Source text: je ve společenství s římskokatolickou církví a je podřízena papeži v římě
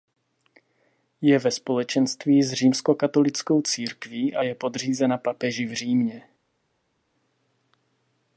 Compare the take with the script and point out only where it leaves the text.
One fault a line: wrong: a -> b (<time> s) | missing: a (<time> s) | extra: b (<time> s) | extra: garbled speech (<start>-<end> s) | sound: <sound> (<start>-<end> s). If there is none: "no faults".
no faults